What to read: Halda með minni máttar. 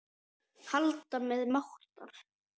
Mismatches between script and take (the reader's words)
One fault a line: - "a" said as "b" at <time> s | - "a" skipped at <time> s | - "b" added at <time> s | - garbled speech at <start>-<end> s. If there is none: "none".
- "minni" skipped at 1.4 s